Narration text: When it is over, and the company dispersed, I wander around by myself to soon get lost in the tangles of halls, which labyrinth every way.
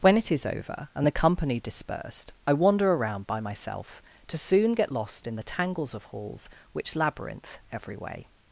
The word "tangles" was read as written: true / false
true